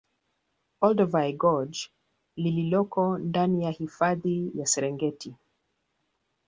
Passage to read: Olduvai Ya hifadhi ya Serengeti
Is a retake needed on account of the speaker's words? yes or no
yes